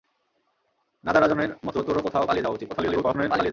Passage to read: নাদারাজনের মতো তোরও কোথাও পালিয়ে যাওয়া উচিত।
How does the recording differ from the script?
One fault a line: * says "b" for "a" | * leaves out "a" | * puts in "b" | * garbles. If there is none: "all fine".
* garbles